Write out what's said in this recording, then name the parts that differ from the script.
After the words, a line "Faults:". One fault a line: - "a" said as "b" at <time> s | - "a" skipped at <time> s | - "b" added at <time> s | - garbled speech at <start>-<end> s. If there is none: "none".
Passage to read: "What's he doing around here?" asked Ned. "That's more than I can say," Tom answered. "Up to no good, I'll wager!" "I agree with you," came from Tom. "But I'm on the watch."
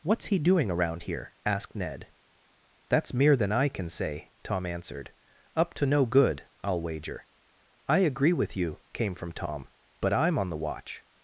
"What's he doing around here?" asked Ned. "That's mere than I can say," Tom answered. "Up to no good, I'll wager!" "I agree with you," came from Tom. "But I'm on the watch."
Faults:
- "more" said as "mere" at 3.1 s